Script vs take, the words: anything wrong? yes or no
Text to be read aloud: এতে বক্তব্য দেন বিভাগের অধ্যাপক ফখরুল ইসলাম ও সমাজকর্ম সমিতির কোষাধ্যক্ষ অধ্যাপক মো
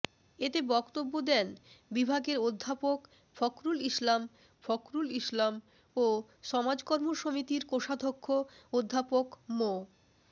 yes